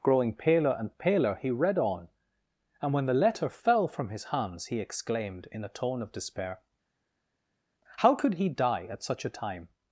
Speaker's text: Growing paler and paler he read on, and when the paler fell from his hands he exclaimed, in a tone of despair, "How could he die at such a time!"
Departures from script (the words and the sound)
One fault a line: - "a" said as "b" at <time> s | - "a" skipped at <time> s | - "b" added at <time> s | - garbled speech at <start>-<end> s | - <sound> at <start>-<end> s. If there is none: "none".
- "paler" said as "letter" at 3.1 s